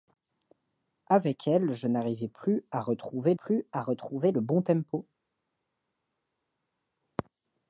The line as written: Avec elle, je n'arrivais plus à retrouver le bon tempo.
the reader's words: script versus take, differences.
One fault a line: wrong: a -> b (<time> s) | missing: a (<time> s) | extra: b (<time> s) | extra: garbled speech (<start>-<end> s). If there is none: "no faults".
extra: plus à retrouver (3.3 s)